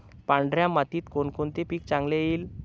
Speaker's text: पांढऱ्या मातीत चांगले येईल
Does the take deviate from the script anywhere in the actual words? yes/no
yes